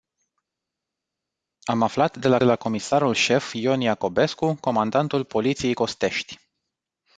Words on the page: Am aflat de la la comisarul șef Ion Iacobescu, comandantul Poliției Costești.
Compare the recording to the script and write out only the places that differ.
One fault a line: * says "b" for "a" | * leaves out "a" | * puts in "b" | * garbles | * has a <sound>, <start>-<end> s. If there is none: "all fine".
all fine